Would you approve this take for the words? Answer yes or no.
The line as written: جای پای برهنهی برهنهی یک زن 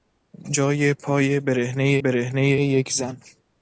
yes